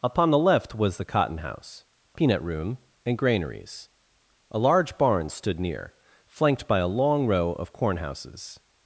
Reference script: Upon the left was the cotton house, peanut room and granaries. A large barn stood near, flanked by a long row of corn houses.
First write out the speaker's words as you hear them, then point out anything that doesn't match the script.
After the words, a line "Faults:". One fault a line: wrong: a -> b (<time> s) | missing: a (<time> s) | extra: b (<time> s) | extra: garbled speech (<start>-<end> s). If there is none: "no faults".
Upon the left was the cotton house, peanut room and granaries. A large barn stood near, flanked by a long row of corn houses.
Faults:
no faults